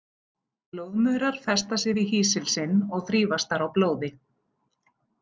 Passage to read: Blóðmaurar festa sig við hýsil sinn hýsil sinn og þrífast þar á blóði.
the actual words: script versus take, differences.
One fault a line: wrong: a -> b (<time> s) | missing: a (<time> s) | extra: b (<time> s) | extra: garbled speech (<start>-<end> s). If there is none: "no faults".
missing: hýsil sinn (2.8 s)